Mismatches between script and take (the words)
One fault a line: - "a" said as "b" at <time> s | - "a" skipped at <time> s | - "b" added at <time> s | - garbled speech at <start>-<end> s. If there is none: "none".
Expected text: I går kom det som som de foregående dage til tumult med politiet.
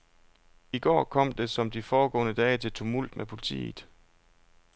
- "som" skipped at 1.7 s